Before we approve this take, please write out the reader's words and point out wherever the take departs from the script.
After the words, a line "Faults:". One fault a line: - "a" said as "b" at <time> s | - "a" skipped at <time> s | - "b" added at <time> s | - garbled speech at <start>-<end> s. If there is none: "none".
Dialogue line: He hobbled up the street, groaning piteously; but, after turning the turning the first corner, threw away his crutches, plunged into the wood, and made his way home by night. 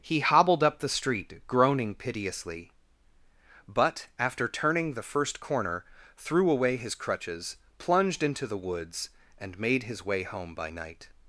He hobbled up the street, groaning piteously; but, after turning the first corner, threw away his crutches, plunged into the woods, and made his way home by night.
Faults:
- "turning the" skipped at 5.0 s
- "wood" said as "woods" at 8.6 s